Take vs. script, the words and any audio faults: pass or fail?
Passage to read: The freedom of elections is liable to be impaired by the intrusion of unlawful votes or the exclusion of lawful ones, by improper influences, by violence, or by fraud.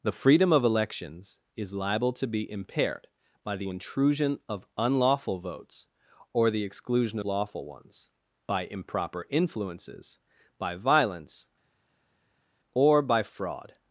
fail